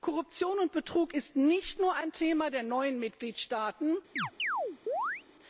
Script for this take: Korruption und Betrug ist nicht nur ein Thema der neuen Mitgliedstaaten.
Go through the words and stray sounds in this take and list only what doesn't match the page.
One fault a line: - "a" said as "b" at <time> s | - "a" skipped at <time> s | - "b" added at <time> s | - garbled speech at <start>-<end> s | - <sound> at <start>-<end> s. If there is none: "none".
- chirp at 4.2-5.2 s